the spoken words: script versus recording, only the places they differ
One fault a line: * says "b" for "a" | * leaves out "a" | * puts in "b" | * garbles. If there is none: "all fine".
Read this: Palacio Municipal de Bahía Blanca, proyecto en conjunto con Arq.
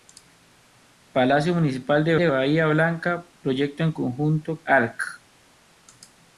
* puts in "de"
* leaves out "con"